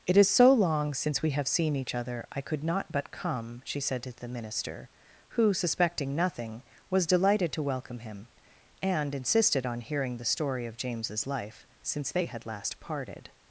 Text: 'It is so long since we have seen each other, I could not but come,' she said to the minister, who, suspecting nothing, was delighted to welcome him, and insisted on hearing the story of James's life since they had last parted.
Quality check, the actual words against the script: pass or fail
pass